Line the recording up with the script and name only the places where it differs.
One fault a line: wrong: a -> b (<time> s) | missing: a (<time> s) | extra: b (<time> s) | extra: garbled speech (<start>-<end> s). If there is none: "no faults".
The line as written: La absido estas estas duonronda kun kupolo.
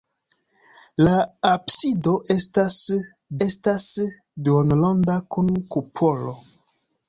no faults